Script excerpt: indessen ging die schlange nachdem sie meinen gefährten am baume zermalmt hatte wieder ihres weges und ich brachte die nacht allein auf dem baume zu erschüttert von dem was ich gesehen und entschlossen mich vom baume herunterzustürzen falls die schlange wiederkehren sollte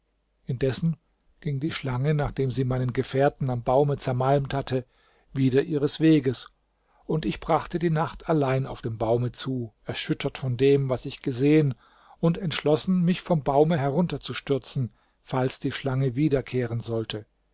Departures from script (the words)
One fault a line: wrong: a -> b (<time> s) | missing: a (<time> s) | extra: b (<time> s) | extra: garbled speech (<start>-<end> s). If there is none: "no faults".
no faults